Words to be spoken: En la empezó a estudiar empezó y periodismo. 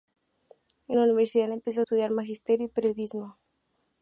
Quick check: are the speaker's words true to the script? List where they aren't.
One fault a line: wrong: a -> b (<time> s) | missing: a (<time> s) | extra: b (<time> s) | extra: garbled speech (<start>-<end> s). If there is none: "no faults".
extra: universidad (1.0 s)
wrong: empezó -> magisterio (2.1 s)